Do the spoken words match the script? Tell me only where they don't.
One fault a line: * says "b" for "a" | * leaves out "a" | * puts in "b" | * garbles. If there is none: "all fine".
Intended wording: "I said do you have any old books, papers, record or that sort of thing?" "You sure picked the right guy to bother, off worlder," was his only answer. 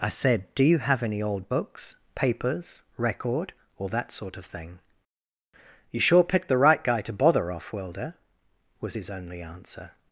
all fine